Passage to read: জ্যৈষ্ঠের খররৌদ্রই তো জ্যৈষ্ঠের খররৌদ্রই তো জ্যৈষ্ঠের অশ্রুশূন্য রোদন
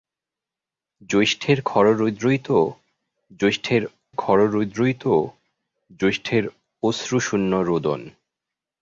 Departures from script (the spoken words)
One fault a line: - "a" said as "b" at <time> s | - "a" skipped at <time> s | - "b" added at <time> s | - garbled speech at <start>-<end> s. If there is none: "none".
none